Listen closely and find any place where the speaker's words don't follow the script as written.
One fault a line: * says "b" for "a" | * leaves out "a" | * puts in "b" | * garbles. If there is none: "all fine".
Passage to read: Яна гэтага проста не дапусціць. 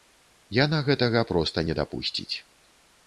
all fine